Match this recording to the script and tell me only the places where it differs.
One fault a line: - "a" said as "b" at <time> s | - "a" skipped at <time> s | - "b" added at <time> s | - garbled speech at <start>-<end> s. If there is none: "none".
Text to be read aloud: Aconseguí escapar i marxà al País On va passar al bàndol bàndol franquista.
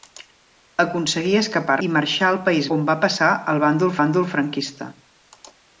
none